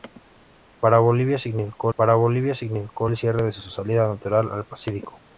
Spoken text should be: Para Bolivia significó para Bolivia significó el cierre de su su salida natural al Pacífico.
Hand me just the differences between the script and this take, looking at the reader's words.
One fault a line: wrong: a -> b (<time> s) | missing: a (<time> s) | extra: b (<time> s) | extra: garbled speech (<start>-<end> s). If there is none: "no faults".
no faults